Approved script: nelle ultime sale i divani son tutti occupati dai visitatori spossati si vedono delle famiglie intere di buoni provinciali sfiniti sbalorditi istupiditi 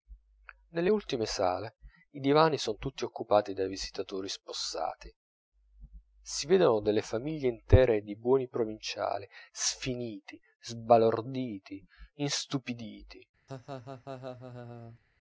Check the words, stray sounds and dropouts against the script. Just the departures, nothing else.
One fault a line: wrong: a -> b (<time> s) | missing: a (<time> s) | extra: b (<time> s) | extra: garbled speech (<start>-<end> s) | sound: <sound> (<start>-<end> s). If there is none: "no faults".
sound: laugh (13.5-15.0 s)